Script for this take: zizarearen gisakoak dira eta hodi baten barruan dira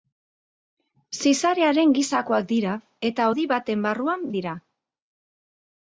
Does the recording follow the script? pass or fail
pass